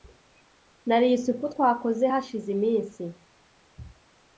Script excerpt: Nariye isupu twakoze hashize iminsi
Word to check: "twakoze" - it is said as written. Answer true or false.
true